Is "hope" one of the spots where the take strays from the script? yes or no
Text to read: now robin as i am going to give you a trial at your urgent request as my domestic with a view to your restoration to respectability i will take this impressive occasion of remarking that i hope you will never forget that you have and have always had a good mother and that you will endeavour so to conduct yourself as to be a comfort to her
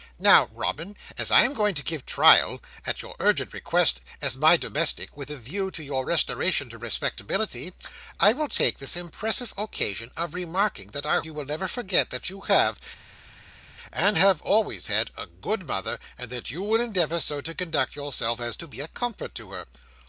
yes